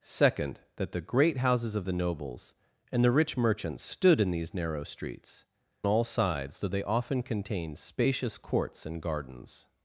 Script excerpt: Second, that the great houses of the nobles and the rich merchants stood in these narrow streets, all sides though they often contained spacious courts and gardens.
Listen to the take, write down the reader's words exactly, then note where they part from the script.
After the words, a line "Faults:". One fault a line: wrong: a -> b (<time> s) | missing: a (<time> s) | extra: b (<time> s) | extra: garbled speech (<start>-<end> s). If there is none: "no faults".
Second, that the great houses of the nobles and the rich merchants stood in these narrow streets, all sides though they often contained spacious courts and gardens.
Faults:
no faults